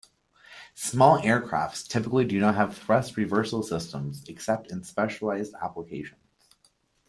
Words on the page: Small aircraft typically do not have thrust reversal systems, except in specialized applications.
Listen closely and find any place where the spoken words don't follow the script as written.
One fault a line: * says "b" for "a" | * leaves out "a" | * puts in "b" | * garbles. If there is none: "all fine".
all fine